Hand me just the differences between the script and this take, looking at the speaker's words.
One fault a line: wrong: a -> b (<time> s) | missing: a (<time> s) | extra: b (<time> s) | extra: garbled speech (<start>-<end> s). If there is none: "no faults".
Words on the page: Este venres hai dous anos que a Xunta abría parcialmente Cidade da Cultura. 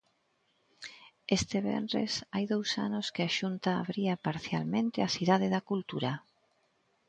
extra: a (5.0 s)